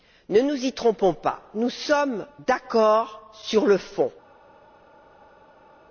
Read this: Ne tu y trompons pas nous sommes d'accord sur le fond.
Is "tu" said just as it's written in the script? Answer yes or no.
no